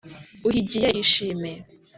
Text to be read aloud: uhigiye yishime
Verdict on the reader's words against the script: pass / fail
pass